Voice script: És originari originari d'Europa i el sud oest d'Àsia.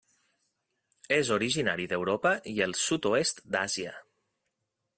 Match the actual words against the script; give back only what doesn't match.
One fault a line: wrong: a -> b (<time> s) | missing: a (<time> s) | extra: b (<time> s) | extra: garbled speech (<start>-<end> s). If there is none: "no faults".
missing: originari (1.9 s)